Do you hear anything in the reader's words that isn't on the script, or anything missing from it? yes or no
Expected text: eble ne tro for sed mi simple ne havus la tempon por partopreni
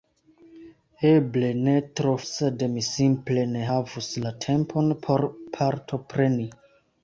yes